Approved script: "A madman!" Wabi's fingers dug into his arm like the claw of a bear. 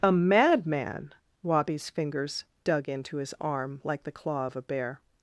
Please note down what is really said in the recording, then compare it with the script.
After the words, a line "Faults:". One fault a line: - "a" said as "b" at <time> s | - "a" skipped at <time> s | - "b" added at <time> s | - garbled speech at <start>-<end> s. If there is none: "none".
"A madman!" Wabi's fingers dug into his arm like the claw of a bear.
Faults:
none